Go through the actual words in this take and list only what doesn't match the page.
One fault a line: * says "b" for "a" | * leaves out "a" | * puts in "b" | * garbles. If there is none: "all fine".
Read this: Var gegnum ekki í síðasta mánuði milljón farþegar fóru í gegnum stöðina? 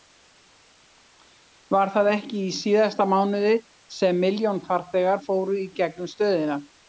* says "það" for "gegnum"
* puts in "sem"